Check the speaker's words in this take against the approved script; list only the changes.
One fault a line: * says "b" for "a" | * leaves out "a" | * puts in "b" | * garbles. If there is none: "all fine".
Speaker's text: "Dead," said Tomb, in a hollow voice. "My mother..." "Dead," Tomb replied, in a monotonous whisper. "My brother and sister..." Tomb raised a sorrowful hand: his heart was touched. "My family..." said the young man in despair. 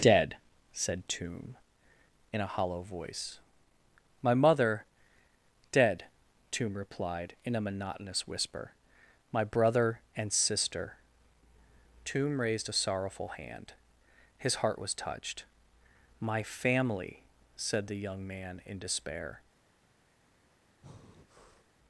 all fine